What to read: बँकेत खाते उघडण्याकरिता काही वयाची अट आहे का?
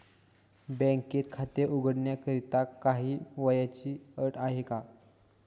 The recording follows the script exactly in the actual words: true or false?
true